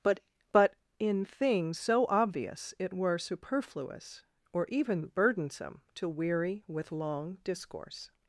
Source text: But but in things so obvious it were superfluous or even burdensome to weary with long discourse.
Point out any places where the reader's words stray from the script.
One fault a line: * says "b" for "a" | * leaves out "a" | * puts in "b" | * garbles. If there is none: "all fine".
all fine